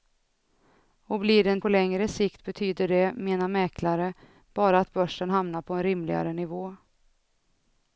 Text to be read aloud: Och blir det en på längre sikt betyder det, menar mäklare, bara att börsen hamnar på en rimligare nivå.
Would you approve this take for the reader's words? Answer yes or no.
yes